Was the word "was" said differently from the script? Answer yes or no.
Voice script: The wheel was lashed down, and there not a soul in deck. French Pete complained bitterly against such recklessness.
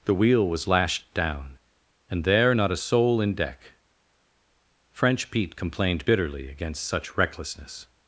no